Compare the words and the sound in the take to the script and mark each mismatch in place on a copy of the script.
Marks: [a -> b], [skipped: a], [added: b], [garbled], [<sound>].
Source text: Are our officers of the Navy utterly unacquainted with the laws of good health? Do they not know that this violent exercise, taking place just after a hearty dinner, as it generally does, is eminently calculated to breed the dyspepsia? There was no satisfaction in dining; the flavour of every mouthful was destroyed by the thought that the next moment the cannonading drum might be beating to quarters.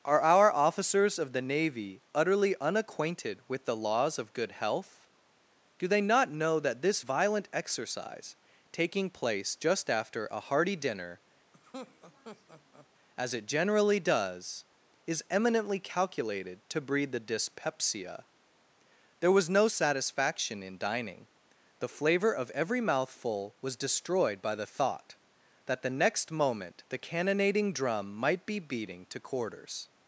Are our officers of the Navy utterly unacquainted with the laws of good health? Do they not know that this violent exercise, taking place just after a hearty dinner, [laugh] as it generally does, is eminently calculated to breed the dyspepsia? There was no satisfaction in dining; the flavour of every mouthful was destroyed by the thought that the next moment the cannonading drum might be beating to quarters.